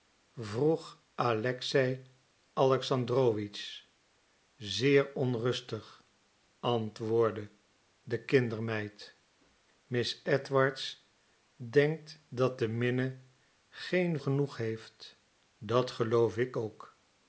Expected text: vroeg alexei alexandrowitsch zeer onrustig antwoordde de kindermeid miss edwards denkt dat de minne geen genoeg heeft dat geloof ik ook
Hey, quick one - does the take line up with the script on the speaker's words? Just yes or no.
yes